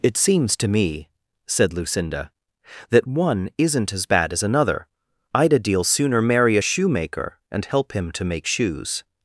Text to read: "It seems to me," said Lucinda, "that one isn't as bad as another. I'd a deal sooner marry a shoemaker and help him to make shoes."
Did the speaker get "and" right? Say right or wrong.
right